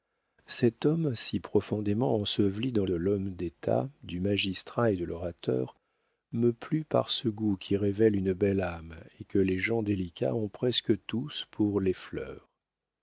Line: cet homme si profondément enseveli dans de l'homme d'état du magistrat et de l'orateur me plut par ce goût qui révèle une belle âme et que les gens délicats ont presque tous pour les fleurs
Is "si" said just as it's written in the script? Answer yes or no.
yes